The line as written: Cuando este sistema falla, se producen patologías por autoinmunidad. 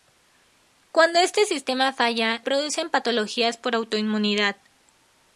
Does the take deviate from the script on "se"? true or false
true